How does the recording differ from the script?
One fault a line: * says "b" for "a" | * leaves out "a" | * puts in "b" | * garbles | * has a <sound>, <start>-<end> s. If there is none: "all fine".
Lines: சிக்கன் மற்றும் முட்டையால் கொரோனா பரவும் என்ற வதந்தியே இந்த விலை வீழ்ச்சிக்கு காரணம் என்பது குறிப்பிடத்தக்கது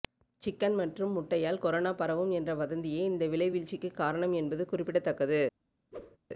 * has a whoosh, 5.9-6.2 s